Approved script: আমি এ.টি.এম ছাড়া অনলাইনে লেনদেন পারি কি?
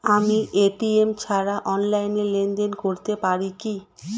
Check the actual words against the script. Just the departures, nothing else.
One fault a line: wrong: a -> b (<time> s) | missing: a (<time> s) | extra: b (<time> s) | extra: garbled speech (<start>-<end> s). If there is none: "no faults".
extra: করতে (2.8 s)